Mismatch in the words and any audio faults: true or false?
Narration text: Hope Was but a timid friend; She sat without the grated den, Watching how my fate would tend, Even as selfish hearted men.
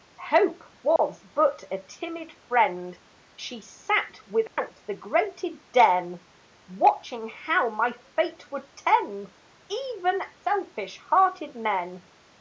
true